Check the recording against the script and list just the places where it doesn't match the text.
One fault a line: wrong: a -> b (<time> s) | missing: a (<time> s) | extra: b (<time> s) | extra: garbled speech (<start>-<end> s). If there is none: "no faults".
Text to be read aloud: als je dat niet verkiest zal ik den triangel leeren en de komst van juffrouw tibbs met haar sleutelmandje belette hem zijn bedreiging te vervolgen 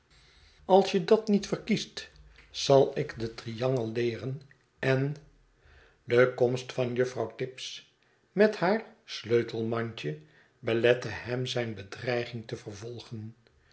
no faults